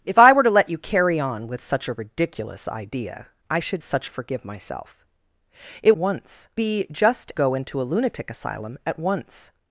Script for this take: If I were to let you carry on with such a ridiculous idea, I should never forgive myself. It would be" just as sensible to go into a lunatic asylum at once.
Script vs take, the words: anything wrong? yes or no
yes